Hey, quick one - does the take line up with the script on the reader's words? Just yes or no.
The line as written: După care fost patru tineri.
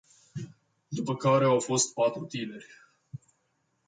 no